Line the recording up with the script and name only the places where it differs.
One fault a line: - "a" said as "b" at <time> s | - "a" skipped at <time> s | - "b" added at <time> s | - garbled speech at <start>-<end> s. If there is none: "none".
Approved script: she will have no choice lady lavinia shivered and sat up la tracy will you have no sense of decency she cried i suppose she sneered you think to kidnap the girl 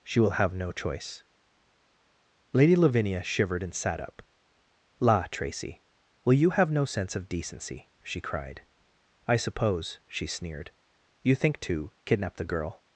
none